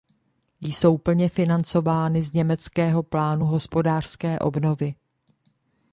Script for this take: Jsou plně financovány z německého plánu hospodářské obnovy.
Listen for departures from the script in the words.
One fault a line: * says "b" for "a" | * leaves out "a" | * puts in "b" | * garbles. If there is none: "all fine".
all fine